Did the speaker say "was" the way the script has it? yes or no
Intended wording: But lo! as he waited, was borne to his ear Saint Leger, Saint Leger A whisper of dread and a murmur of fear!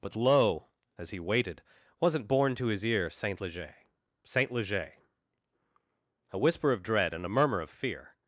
no